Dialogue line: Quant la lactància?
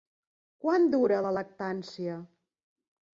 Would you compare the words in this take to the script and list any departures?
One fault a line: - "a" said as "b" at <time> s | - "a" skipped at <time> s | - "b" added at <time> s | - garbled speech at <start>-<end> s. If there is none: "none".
- "dura" added at 0.9 s